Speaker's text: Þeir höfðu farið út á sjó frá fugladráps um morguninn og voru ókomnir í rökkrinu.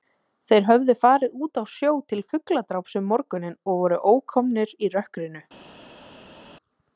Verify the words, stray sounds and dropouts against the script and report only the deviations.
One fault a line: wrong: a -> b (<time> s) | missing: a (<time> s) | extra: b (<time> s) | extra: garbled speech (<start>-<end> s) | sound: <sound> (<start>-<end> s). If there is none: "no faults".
wrong: frá -> til (2.1 s)